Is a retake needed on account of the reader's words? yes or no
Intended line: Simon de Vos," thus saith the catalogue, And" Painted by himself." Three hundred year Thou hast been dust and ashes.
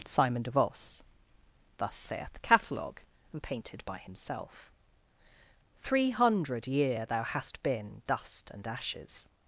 no